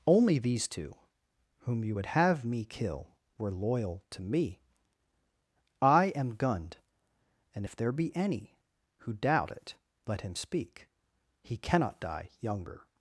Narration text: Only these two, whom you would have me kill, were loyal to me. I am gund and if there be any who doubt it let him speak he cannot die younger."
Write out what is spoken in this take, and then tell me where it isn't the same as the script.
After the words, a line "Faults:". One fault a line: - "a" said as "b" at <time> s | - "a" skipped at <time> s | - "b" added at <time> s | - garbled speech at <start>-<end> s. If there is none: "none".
Only these two, whom you would have me kill, were loyal to me. I am gund and if there be any who doubt it let him speak he cannot die younger."
Faults:
none